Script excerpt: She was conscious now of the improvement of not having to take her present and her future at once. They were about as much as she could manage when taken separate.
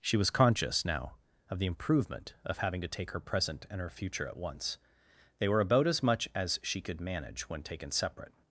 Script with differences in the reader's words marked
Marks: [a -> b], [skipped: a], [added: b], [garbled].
She was conscious now of the improvement of [skipped: not] having to take her present and her future at once. They were about as much as she could manage when taken separate.